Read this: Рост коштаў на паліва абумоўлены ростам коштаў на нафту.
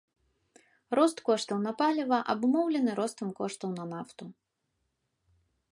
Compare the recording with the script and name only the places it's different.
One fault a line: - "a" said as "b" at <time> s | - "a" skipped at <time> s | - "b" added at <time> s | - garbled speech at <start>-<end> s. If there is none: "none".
none